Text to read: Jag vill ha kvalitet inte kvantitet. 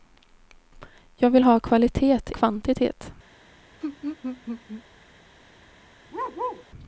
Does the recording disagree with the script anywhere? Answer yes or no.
yes